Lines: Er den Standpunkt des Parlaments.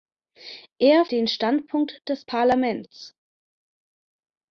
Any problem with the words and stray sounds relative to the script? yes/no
no